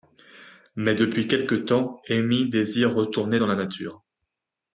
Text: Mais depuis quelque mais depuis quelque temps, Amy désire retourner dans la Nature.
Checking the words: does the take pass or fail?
fail